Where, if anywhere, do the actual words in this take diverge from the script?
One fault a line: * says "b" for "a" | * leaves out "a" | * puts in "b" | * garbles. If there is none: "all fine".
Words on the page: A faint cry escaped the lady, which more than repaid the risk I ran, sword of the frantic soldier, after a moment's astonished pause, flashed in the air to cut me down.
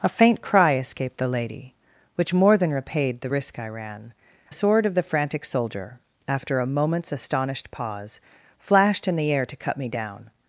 all fine